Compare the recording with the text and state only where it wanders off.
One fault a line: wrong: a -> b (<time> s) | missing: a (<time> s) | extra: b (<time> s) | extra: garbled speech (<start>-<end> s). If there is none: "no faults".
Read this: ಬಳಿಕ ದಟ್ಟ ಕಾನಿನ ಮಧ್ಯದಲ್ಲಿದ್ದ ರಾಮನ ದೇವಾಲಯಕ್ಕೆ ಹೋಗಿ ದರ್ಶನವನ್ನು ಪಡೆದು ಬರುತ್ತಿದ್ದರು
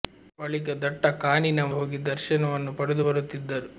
missing: ಮಧ್ಯದಲ್ಲಿದ್ದ ರಾಮನ ದೇವಾಲಯಕ್ಕೆ (1.6 s)